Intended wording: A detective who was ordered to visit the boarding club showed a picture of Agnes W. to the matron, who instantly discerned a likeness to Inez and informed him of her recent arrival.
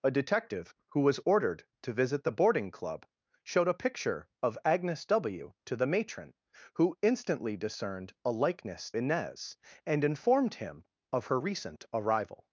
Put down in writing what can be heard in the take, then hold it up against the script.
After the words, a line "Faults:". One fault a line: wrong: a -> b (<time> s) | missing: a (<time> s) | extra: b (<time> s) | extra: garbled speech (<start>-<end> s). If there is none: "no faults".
A detective who was ordered to visit the boarding club showed a picture of Agnes W. to the matron, who instantly discerned a likeness Inez and informed him of her recent arrival.
Faults:
missing: to (8.9 s)